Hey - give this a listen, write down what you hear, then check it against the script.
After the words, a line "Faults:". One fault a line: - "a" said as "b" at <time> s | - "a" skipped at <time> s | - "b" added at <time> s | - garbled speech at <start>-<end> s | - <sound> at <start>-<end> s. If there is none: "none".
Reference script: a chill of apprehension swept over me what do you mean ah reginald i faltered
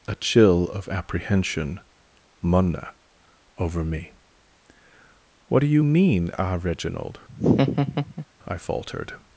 a chill of apprehension munna over me what do you mean ah reginald i faltered
Faults:
- "swept" said as "munna" at 2.4 s
- laugh at 7.3-8.3 s